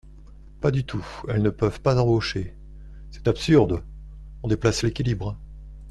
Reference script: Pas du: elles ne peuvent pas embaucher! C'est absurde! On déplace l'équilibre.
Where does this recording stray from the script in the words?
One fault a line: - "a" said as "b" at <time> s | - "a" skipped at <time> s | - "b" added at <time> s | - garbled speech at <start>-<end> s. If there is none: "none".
- "tout" added at 0.8 s